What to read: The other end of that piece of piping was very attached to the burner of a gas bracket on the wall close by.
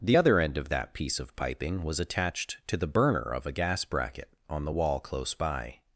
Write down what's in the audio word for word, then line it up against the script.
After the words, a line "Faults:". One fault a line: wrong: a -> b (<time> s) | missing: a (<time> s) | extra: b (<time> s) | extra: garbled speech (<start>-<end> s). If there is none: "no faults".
The other end of that piece of piping was attached to the burner of a gas bracket on the wall close by.
Faults:
missing: very (2.0 s)